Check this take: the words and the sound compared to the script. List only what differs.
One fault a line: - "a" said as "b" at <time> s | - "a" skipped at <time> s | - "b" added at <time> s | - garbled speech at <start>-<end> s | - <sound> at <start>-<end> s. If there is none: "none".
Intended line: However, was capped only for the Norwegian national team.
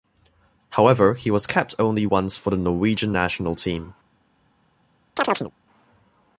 - "he" added at 1.1 s
- "once" added at 2.0 s
- chirp at 5.2-5.5 s